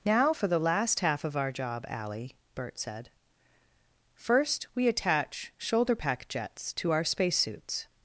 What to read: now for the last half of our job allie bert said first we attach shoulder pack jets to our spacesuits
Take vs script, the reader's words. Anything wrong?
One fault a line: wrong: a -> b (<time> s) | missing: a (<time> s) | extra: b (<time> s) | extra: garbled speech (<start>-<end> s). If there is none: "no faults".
no faults